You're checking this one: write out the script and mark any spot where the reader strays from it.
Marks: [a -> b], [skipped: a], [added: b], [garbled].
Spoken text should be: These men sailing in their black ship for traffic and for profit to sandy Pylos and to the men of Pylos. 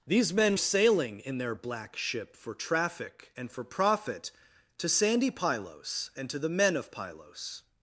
These men sailing in their black ship for traffic and for profit to sandy Pylos and to the men of Pylos.